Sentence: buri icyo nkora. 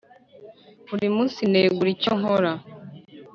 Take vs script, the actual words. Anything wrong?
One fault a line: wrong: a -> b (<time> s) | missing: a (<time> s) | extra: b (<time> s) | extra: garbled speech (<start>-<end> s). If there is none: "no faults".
extra: munsi negura (1.1 s)